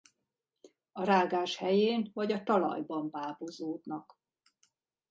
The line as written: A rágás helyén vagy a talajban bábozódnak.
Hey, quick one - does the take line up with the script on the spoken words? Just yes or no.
yes